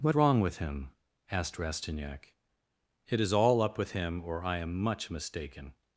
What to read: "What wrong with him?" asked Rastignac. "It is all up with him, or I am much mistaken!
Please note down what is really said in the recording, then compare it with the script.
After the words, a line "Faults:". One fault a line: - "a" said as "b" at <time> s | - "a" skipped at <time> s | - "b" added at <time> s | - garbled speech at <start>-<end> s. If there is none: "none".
"What wrong with him?" asked Rastignac. "It is all up with him, or I am much mistaken!
Faults:
none